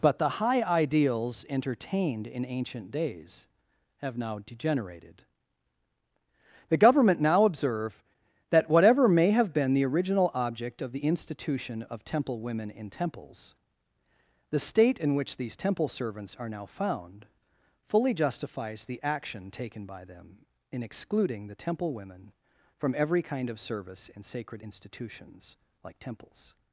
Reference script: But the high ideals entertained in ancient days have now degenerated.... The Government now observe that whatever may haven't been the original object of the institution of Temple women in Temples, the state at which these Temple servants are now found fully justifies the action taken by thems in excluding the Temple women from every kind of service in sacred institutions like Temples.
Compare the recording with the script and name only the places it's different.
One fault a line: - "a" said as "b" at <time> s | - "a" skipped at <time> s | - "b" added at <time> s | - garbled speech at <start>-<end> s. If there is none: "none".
- "haven't" said as "have" at 9.3 s
- "at" said as "in" at 15.0 s
- "thems" said as "them" at 20.1 s